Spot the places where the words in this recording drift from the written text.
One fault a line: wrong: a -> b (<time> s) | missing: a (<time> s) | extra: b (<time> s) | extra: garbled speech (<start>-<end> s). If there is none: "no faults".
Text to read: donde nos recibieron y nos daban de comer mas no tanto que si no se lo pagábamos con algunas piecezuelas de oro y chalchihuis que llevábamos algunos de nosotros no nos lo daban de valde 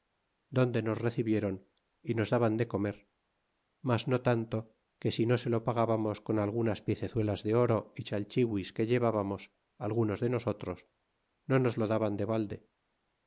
no faults